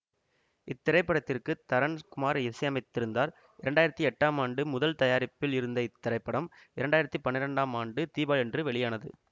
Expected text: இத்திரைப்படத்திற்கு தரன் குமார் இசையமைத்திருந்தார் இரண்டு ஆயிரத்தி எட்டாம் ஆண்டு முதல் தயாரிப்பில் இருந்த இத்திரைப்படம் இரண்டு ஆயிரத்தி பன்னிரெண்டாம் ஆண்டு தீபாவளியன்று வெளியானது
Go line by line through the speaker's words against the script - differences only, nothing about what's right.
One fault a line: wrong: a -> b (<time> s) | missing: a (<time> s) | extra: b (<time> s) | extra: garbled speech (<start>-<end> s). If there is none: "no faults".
no faults